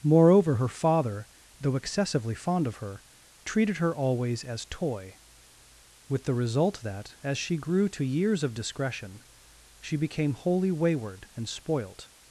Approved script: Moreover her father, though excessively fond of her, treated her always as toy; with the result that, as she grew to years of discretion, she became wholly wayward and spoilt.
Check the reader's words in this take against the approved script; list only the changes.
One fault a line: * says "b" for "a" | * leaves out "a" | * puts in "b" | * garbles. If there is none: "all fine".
all fine